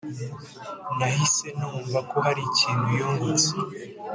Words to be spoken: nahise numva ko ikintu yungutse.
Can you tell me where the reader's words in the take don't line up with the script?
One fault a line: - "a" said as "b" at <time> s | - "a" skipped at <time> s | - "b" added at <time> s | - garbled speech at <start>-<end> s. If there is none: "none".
- "hari" added at 2.2 s